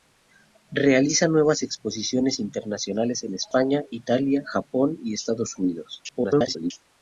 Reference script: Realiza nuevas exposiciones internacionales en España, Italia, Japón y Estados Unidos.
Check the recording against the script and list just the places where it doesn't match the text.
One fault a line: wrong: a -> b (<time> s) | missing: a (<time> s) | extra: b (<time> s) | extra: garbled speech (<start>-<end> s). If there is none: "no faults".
extra: garbled speech (6.1-6.7 s)